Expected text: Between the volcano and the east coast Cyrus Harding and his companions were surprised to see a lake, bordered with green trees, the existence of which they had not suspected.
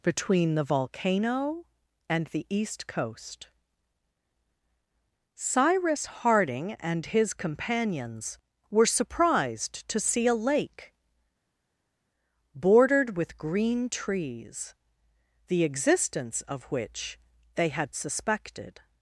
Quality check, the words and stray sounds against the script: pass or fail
fail